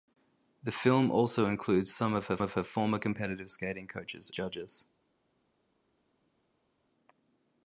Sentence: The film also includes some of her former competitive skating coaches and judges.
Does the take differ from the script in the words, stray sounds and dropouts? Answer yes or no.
yes